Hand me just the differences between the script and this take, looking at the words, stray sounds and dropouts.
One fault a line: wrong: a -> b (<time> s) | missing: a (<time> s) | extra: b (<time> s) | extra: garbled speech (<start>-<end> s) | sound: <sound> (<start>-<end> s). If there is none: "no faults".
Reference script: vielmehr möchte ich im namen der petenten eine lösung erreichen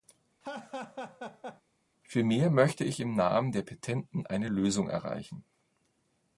sound: laugh (0.4-1.6 s)